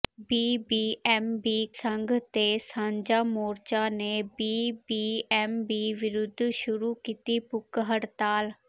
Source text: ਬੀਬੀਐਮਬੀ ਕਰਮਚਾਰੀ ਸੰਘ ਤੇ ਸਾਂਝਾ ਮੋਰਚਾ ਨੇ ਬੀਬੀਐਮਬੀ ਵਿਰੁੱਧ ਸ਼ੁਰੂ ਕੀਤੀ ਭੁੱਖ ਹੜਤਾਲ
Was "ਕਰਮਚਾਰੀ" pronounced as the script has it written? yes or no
no